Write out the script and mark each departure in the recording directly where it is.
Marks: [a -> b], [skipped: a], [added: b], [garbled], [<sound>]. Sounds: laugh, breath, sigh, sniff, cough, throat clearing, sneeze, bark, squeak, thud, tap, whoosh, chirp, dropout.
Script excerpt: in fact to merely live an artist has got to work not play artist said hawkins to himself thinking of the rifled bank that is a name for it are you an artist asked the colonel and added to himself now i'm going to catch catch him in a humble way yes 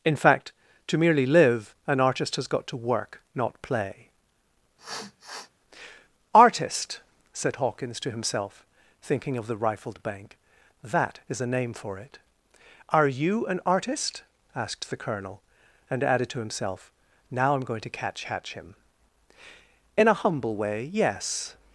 in fact to merely live an artist has got to work not play [sniff] artist said hawkins to himself thinking of the rifled bank that is a name for it are you an artist asked the colonel and added to himself now i'm going to catch catch him in a humble way yes